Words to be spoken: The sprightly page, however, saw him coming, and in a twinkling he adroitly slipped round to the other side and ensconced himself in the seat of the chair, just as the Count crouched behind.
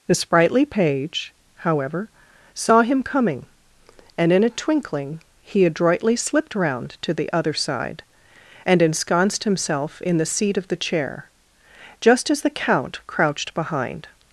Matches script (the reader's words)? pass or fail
pass